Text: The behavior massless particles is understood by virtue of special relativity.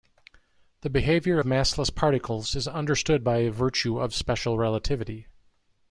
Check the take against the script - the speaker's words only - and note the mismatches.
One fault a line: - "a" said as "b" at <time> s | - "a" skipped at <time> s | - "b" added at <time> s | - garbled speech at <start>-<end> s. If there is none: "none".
none